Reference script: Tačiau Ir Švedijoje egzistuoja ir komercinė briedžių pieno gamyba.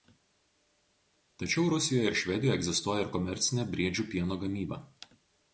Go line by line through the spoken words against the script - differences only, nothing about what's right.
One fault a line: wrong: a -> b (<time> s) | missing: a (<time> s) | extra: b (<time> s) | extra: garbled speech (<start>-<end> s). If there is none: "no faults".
extra: Rusijoje (1.7 s)